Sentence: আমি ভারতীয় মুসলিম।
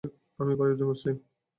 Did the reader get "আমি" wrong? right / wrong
right